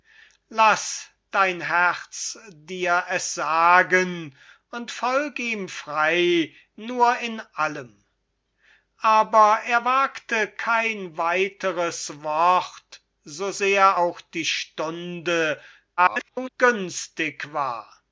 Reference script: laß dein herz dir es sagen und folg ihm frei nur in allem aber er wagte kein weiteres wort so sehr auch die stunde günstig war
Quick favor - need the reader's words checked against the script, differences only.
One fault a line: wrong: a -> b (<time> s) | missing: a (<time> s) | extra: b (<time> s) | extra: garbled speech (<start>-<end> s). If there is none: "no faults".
extra: garbled speech (16.0-16.5 s)